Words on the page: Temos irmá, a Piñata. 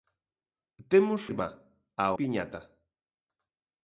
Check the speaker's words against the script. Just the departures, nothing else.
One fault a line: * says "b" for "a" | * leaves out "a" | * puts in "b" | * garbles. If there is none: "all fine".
all fine